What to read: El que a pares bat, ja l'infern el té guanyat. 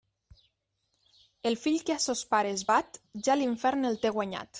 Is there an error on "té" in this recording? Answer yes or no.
no